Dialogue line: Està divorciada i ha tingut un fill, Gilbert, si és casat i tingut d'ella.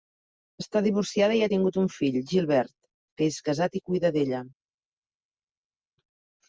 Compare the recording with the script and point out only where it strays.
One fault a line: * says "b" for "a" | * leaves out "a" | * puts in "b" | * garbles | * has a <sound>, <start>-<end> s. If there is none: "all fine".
* says "que" for "si"
* says "cuida" for "tingut"